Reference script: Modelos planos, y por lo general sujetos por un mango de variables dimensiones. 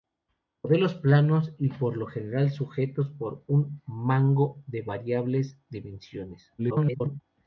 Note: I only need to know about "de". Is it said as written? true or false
true